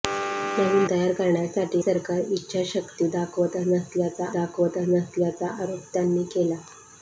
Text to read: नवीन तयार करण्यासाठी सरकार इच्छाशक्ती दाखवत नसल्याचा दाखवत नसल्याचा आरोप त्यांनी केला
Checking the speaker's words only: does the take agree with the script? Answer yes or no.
yes